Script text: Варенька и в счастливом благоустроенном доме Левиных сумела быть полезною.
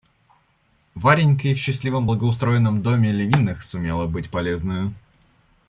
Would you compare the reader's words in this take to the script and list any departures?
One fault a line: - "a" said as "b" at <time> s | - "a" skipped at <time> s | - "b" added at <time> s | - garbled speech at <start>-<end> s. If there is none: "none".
none